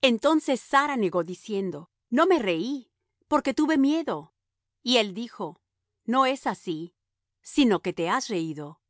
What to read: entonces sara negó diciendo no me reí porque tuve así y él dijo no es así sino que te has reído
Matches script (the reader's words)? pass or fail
fail